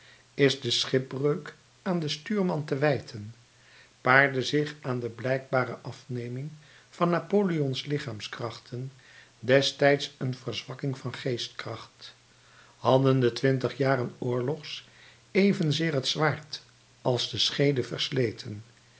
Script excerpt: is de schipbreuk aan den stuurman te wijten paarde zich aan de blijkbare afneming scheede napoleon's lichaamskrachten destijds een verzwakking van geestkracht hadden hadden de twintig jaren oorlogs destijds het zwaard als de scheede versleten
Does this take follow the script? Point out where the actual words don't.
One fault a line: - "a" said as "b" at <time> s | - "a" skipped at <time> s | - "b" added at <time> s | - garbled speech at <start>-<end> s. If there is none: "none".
- "scheede" said as "van" at 6.9 s
- "hadden" skipped at 13.2 s
- "destijds" said as "evenzeer" at 15.3 s